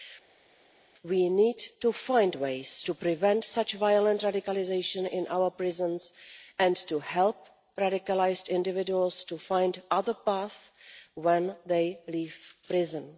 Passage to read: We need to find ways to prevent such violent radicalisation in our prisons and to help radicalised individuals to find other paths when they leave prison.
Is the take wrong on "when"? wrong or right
right